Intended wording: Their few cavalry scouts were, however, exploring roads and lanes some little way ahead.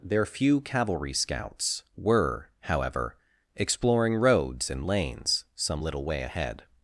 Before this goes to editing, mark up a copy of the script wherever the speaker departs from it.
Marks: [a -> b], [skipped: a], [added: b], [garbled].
Their few cavalry scouts were, however, exploring roads and lanes some little way ahead.